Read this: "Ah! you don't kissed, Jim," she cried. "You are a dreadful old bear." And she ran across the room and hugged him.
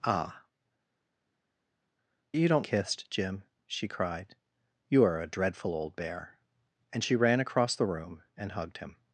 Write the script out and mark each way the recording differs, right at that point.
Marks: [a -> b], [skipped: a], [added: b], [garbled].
"Ah! you don't kissed, Jim," she cried. "You are a dreadful old bear." And she ran across the room and hugged him.